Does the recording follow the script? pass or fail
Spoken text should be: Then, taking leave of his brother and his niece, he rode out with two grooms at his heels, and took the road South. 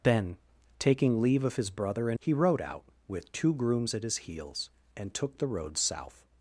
fail